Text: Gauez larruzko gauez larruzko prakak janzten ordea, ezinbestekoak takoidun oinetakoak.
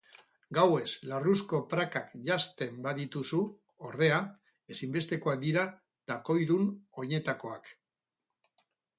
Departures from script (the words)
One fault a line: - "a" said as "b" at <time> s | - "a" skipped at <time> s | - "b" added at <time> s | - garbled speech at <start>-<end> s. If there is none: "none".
- "gauez larruzko" skipped at 1.6 s
- "badituzu" added at 2.9 s
- "dira" added at 5.4 s